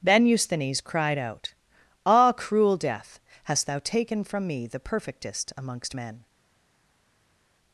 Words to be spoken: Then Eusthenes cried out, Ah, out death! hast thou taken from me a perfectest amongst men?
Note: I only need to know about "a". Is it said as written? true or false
false